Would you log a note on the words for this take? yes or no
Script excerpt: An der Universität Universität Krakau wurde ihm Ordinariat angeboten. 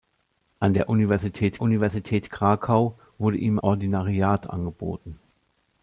no